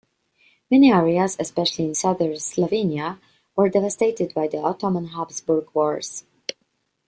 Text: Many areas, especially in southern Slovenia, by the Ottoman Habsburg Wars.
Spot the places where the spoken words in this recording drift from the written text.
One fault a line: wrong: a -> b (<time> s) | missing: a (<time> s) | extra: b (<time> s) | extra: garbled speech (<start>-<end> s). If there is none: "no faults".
extra: were devastated (3.6 s)